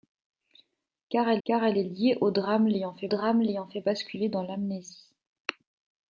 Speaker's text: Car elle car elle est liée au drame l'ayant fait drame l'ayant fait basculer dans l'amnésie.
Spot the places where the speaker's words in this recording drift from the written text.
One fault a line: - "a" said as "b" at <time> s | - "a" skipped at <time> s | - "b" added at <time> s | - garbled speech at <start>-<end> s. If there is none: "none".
none